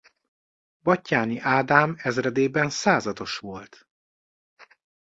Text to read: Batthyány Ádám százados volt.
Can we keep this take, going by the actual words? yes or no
no